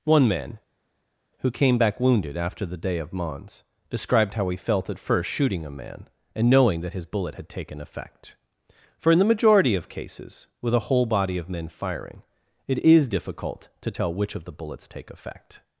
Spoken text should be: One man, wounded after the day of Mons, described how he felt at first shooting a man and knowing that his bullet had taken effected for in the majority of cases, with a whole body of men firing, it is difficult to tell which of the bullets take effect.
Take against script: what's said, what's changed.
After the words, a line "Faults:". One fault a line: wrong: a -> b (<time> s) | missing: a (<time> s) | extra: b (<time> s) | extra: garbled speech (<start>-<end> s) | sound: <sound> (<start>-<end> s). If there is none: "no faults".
One man, who came back wounded after the day of Mons, described how he felt at first shooting a man and knowing that his bullet had taken effect for in the majority of cases, with a whole body of men firing, it is difficult to tell which of the bullets take effect.
Faults:
extra: who came back (1.4 s)
wrong: effected -> effect (7.8 s)